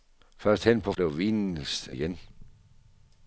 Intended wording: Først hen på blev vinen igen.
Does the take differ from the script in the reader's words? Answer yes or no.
no